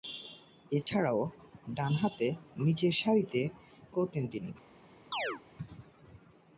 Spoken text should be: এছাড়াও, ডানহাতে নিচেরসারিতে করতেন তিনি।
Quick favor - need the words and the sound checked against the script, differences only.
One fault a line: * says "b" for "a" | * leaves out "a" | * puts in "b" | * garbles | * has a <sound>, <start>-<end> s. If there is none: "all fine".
* has a dropout, 0.8-0.9 s
* has a chirp, 5.1-5.4 s